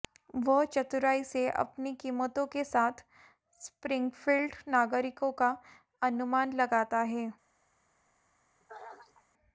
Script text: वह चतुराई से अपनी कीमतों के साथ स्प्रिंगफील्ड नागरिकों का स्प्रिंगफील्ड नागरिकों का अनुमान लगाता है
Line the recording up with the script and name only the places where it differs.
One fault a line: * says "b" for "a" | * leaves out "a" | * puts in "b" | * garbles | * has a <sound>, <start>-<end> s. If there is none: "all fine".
* leaves out "स्प्रिंगफील्ड नागरिकों का"
* has a throat clearing, 8.6-9.3 s